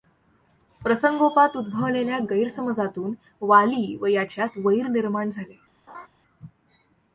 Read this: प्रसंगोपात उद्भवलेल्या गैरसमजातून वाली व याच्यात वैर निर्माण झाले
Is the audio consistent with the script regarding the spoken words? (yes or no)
yes